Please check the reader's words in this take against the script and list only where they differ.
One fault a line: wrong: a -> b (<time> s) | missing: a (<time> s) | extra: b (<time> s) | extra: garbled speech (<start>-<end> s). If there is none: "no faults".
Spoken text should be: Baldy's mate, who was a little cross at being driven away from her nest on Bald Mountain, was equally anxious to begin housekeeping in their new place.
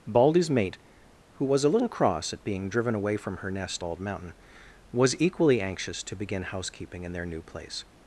missing: on (3.8 s)